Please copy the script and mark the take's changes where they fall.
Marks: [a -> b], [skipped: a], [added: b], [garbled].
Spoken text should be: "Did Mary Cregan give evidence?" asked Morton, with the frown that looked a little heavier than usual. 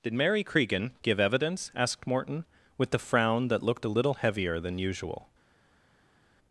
"Did Mary Cregan give evidence?" asked Morton, with the frown that looked a little heavier than usual.